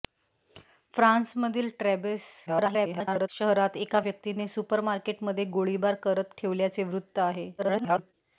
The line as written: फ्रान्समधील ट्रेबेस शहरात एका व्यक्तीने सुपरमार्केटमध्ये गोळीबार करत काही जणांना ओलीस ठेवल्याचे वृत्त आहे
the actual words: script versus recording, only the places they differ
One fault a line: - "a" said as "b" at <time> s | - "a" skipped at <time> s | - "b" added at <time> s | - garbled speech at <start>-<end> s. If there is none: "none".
- garbled speech at 2.5-3.3 s
- "काही जणांना ओलीस" skipped at 6.3 s
- garbled speech at 7.6-8.1 s